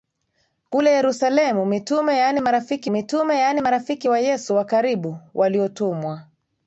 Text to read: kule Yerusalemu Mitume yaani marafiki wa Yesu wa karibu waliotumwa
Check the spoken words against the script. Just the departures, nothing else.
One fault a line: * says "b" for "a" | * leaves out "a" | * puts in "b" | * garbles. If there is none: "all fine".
* puts in "Mitume yaani marafiki"